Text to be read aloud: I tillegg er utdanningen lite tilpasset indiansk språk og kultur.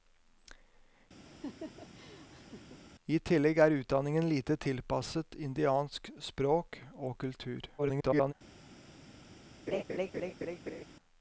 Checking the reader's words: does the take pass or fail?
fail